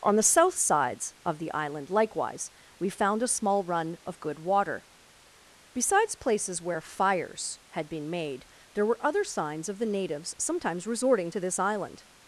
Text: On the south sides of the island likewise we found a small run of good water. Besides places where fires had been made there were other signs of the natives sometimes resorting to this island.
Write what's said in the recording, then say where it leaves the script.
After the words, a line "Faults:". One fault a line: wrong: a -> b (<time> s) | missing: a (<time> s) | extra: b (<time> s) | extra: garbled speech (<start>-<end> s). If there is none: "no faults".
On the south sides of the island likewise we found a small run of good water. Besides places where fires had been made there were other signs of the natives sometimes resorting to this island.
Faults:
no faults